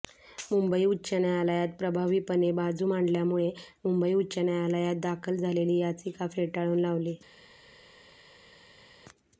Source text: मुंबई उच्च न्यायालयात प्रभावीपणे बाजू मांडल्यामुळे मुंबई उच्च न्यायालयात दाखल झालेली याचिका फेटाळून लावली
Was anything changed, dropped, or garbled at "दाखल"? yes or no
no